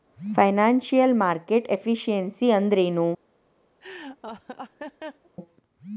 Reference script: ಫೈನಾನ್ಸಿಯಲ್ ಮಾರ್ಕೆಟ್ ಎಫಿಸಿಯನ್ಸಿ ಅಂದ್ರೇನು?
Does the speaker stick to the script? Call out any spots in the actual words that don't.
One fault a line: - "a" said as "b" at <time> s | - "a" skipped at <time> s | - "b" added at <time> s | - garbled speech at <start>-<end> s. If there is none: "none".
none